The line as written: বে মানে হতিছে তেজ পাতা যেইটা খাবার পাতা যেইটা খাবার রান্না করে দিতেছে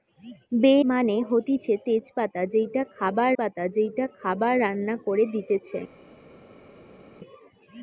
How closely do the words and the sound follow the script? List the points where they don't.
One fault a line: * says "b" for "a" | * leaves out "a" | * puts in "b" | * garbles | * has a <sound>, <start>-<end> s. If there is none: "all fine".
all fine